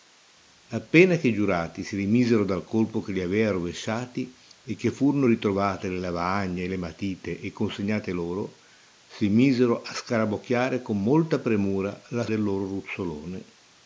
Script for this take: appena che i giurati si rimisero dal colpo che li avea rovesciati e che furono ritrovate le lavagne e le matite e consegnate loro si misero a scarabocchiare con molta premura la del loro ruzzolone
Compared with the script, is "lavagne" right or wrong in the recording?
right